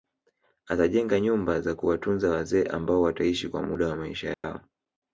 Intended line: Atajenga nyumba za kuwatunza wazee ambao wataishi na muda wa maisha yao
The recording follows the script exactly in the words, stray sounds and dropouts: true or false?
false